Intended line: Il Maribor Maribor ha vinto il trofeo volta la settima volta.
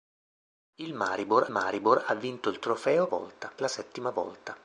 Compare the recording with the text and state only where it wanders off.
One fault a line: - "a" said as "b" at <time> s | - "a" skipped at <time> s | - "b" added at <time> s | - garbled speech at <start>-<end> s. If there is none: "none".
none